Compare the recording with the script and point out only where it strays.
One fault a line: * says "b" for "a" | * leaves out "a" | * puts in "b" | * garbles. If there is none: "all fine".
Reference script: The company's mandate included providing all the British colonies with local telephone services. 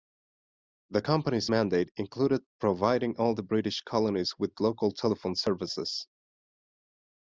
all fine